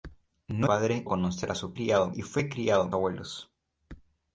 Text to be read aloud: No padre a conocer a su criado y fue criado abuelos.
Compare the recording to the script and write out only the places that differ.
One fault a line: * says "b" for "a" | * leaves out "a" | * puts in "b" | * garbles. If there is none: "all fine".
all fine